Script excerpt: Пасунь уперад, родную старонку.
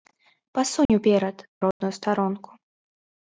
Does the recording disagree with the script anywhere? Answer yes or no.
no